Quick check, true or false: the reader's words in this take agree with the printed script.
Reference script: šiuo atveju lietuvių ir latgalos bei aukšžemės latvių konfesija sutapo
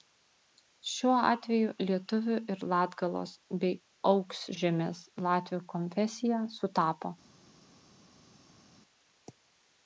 true